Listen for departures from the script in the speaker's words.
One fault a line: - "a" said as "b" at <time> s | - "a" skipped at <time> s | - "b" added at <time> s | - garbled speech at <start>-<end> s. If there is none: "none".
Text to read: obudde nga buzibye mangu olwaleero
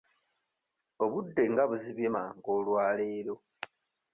none